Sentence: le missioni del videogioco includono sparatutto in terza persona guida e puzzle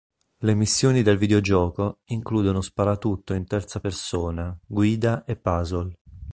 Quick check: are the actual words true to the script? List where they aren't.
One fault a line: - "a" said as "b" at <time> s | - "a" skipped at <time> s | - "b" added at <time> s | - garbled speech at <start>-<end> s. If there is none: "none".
none